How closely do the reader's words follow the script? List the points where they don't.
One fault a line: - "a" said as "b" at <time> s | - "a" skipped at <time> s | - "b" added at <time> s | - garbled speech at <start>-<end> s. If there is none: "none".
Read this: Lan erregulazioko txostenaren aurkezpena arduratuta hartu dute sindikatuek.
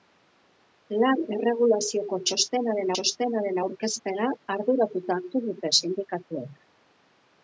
- "txostenaren" added at 3.0 s